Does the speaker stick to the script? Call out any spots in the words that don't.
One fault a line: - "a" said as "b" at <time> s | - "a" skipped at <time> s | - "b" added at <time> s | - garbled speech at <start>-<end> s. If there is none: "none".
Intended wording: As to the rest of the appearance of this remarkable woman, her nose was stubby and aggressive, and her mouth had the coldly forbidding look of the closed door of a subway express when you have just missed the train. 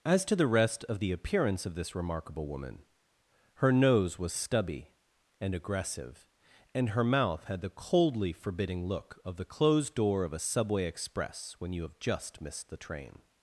none